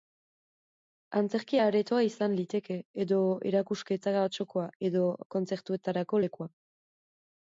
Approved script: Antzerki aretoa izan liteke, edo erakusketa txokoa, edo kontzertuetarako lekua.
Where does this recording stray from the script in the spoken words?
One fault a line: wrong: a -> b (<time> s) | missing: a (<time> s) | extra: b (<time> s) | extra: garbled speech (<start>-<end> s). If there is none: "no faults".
no faults